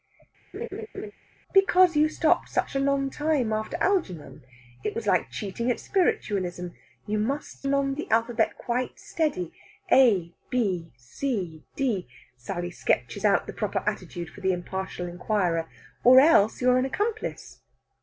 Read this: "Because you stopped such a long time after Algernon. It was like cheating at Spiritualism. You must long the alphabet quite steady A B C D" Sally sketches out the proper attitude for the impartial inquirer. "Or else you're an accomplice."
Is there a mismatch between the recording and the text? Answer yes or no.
no